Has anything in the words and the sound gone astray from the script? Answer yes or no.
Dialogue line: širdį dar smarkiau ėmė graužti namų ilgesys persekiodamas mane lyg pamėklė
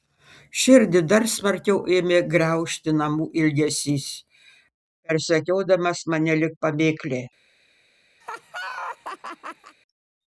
yes